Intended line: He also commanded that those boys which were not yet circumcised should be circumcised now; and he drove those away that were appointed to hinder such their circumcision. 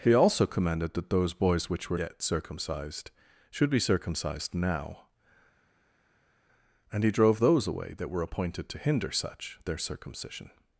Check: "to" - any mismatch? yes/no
no